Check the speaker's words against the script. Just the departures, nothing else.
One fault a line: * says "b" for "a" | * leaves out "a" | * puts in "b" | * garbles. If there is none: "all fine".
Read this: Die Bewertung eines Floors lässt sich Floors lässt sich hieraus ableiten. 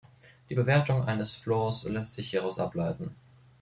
* leaves out "Floors lässt sich"